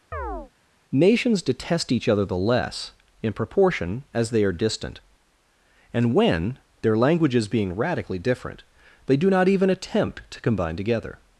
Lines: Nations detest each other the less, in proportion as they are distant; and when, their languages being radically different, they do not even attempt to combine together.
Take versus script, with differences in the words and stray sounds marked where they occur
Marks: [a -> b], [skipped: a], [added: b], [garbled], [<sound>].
[chirp] Nations detest each other the less, in proportion as they are distant; and when, their languages being radically different, they do not even attempt to combine together.